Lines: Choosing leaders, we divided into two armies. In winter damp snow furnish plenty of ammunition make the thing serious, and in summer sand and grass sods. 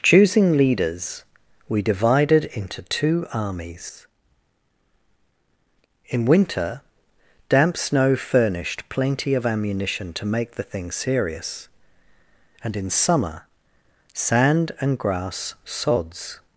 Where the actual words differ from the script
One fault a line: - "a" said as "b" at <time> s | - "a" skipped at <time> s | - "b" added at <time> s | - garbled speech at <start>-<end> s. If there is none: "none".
- "furnish" said as "furnished" at 8.2 s
- "to" added at 10.1 s